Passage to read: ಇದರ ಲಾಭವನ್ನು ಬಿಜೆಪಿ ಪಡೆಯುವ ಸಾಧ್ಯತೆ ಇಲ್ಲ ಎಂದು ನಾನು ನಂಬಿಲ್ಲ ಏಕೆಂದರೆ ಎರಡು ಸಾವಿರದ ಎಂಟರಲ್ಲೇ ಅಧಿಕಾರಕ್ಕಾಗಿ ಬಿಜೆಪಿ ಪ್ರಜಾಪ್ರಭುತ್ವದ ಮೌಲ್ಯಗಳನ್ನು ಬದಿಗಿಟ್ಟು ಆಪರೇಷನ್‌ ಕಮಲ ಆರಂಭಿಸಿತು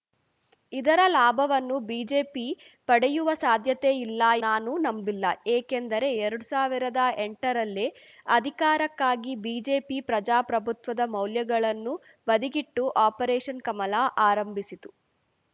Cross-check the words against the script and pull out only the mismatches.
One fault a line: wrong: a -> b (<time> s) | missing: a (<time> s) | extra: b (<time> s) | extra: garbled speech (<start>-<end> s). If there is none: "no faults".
missing: ಎಂದು (4.2 s)